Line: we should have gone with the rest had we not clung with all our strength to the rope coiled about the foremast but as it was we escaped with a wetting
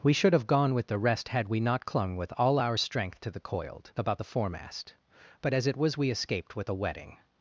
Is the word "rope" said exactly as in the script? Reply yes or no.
no